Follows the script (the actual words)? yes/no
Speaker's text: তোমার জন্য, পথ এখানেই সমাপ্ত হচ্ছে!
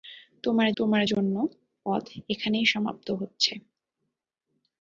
no